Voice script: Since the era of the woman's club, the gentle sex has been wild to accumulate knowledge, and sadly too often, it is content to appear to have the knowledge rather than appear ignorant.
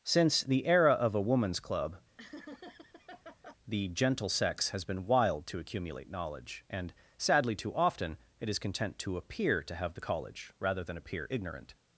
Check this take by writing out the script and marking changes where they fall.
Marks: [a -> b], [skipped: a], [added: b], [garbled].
Since the era of [the -> a] woman's club, the gentle sex has been wild to accumulate knowledge, and sadly too often, it is content to appear to have the [knowledge -> college] rather than appear ignorant.